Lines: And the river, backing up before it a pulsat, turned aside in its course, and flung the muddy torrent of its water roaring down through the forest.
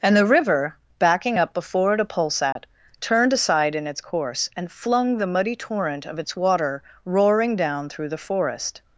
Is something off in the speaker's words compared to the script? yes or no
no